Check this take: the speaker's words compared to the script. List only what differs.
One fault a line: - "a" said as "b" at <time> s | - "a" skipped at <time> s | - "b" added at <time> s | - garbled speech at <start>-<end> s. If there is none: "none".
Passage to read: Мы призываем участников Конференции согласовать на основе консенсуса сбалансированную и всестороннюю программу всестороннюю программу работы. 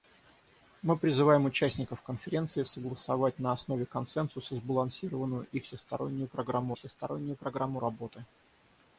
none